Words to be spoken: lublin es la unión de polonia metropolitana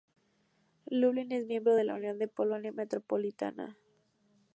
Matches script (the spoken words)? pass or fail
fail